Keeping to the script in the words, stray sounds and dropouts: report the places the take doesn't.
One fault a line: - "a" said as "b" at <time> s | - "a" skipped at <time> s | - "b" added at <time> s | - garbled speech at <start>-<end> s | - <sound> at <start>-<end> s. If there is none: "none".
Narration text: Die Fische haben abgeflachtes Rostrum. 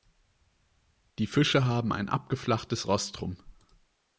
- "ein" added at 1.9 s